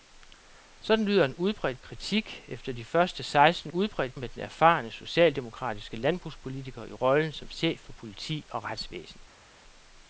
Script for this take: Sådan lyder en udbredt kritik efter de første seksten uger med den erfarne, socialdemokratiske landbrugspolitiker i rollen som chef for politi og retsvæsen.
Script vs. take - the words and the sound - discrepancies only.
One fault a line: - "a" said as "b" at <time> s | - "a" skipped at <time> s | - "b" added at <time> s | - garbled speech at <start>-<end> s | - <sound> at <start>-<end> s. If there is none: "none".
- "uger" said as "udbredt" at 3.7 s